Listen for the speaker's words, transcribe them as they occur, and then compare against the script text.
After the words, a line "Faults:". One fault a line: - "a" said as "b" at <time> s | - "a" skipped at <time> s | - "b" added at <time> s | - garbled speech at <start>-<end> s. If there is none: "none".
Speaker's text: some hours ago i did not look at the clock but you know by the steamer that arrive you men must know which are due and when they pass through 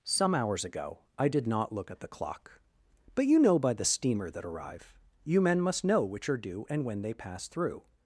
some hours ago i did not look at the clock but you know by the steamer that arrive you men must know which are due and when they pass through
Faults:
none